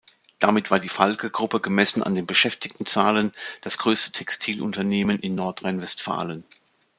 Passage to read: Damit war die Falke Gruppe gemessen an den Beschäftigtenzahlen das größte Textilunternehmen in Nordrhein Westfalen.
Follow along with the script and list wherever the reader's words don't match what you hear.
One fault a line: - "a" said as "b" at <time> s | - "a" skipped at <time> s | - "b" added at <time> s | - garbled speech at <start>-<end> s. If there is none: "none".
none